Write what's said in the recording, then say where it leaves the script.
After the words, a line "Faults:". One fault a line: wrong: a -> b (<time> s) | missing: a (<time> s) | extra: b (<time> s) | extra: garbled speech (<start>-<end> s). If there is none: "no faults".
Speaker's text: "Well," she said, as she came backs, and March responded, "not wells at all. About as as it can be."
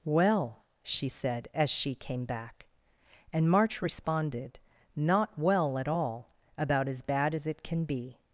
"Well," she said, as she came back, and March responded, "not well at all. About as bad as it can be."
Faults:
wrong: backs -> back (2.2 s)
wrong: wells -> well (5.4 s)
extra: bad (7.0 s)